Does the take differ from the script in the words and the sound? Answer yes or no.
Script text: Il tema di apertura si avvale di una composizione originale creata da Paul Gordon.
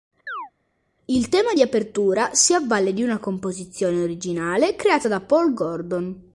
yes